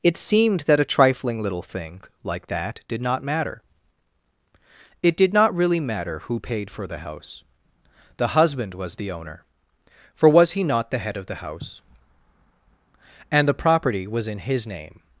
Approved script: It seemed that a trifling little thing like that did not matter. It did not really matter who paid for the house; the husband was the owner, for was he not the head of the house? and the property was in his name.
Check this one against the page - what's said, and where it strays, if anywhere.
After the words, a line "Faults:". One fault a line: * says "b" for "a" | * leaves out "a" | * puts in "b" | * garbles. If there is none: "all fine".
It seemed that a trifling little thing like that did not matter. It did not really matter who paid for the house; the husband was the owner, for was he not the head of the house? and the property was in his name.
Faults:
all fine